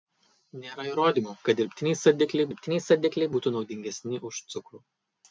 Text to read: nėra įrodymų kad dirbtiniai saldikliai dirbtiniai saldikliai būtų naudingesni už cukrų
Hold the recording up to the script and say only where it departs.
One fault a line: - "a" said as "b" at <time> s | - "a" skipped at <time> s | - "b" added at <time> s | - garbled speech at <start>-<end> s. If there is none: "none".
none